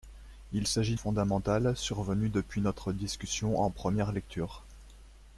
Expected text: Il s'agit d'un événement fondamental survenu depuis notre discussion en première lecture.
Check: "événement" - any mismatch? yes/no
yes